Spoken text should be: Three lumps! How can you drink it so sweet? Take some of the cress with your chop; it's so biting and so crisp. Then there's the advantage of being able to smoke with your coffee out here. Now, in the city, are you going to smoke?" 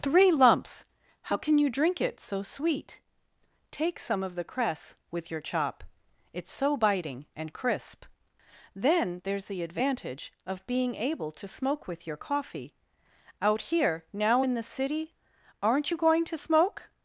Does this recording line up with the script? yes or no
no